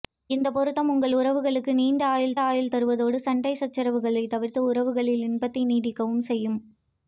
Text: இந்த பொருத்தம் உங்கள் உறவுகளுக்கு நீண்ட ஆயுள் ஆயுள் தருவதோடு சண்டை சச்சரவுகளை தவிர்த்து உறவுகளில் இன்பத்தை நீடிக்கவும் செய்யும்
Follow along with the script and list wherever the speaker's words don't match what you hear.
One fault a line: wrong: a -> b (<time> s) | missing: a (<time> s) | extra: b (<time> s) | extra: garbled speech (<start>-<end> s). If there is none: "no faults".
no faults